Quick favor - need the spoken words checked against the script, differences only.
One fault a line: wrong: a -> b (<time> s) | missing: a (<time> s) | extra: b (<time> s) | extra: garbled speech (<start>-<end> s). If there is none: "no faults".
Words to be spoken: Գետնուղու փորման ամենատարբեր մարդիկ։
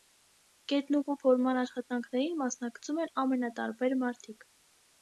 extra: աշխատանքներին մասնակցում են (1.6 s)